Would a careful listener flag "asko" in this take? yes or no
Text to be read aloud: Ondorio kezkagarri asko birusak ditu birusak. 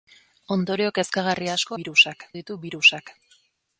no